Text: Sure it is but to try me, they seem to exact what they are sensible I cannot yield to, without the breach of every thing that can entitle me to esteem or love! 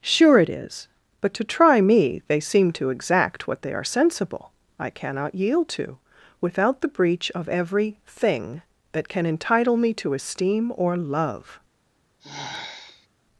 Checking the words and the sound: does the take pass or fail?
fail